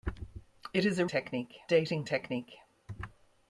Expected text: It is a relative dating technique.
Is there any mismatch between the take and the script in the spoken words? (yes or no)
yes